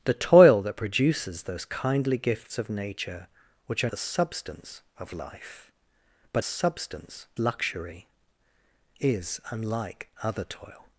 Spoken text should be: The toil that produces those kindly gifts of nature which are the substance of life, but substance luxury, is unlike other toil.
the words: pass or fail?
pass